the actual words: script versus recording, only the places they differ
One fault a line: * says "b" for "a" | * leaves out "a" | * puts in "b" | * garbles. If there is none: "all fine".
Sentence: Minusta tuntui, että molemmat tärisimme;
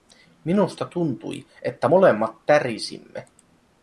all fine